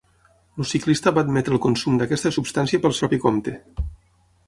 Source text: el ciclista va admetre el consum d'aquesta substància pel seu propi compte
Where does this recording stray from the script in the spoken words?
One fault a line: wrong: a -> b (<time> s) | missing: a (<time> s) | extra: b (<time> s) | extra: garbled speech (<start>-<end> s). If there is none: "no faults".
missing: seu (3.0 s)